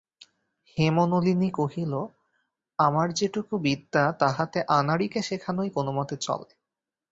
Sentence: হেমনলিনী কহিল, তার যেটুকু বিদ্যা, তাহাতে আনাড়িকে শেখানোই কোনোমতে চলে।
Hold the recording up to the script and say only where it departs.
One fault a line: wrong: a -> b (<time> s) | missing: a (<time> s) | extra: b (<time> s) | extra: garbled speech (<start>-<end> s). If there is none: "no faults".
wrong: তার -> আমার (2.8 s)